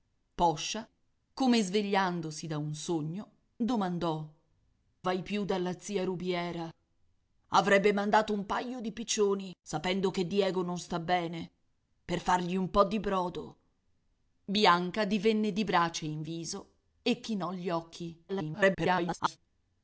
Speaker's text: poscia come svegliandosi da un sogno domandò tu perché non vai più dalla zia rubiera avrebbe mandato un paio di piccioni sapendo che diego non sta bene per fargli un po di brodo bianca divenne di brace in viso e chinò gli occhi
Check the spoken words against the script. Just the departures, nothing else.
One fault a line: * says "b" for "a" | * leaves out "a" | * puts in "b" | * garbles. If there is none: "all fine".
* leaves out "tu perché non"
* garbles